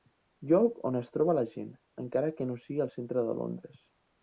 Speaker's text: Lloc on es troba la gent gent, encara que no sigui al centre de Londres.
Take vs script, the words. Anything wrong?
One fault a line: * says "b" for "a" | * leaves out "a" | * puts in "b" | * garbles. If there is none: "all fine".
* leaves out "gent"